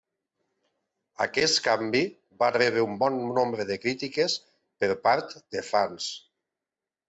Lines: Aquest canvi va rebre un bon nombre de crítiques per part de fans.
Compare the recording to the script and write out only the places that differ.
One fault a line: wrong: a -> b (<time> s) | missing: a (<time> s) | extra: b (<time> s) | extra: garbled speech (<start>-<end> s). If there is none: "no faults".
no faults